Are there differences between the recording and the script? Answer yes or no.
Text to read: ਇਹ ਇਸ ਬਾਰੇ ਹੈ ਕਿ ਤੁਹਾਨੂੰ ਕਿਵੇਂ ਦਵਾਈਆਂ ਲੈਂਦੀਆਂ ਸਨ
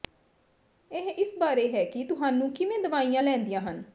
yes